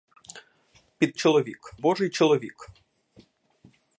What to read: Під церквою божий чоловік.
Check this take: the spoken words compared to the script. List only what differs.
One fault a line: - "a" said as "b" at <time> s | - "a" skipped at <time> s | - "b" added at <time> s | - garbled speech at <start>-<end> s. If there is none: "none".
- "церквою" said as "чоловік" at 1.1 s